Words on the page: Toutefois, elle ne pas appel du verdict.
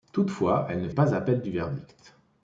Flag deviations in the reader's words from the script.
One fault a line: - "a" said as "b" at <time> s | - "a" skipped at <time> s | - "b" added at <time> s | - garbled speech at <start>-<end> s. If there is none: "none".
none